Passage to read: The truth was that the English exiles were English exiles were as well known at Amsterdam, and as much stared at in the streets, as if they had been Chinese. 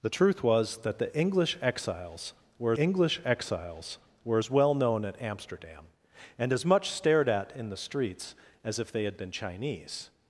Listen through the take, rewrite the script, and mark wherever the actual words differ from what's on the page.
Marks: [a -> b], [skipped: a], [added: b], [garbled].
The truth was that the English exiles were English exiles were as well known at Amsterdam, and as much stared at in the streets, as if they had been Chinese.